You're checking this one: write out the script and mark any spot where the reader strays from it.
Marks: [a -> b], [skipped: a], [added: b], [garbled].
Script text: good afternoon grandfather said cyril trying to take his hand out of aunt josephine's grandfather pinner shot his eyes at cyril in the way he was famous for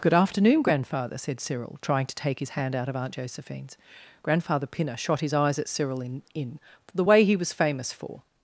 good afternoon grandfather said cyril trying to take his hand out of aunt josephine's grandfather pinner shot his eyes at cyril in [added: in] the way he was famous for